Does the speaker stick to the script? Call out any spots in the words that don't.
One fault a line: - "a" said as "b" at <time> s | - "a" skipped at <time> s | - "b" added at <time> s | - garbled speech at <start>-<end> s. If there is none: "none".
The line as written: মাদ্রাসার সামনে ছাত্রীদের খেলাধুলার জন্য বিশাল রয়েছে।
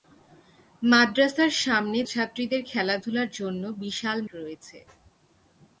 none